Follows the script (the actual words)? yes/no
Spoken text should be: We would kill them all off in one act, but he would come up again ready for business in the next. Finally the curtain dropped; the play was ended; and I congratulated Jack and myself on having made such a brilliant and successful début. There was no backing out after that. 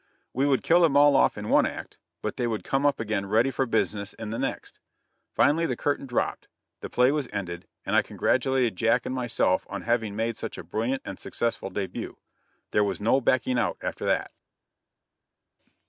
no